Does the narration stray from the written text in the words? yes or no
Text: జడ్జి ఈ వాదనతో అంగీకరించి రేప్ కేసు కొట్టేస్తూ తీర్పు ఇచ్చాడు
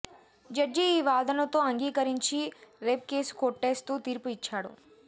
no